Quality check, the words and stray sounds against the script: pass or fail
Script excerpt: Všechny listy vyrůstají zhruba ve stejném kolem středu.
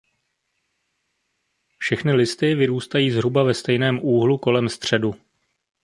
fail